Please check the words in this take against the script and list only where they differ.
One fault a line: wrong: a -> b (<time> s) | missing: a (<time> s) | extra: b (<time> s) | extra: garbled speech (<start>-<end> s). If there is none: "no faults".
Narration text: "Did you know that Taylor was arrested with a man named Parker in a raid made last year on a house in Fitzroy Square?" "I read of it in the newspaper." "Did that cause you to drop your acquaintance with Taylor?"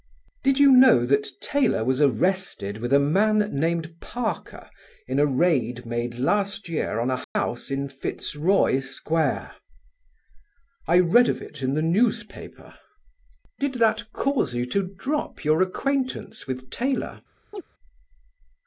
no faults